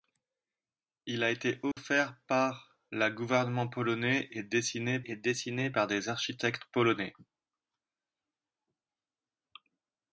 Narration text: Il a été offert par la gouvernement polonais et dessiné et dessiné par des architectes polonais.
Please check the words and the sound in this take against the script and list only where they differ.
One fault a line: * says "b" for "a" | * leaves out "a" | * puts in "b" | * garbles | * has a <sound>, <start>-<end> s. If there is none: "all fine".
* has a dropout, 1.7-1.8 s